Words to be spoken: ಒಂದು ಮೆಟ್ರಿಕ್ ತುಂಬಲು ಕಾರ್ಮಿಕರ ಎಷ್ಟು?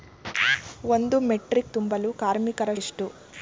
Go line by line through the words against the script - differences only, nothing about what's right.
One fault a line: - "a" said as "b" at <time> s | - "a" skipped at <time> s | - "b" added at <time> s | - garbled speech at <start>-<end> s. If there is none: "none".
none